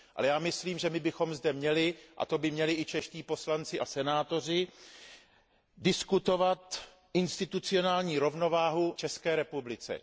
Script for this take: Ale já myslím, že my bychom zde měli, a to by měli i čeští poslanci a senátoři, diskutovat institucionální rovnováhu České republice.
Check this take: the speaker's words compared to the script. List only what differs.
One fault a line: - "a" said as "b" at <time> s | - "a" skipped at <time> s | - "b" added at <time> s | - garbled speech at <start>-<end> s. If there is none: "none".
none